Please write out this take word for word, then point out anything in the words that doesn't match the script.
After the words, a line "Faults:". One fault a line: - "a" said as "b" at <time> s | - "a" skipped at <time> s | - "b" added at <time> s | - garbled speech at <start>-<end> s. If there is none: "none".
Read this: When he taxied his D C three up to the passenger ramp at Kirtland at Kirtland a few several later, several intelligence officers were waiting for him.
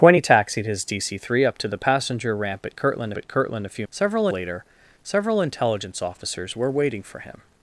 When he taxied his D C three up to the passenger ramp at Kirtland at Kirtland a few several later, several intelligence officers were waiting for him.
Faults:
none